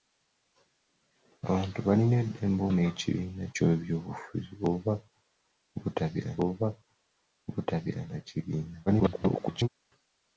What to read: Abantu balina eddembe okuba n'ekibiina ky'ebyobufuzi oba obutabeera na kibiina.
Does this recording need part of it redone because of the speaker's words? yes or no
yes